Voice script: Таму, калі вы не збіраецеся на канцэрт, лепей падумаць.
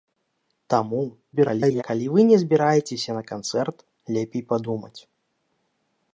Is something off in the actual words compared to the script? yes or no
yes